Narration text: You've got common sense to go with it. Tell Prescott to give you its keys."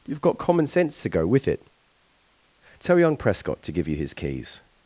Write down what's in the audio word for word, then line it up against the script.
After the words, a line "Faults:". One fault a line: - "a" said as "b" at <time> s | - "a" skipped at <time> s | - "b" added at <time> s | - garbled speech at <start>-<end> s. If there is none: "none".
You've got common sense to go with it. Tell young Prescott to give you his keys."
Faults:
- "young" added at 3.0 s
- "its" said as "his" at 4.0 s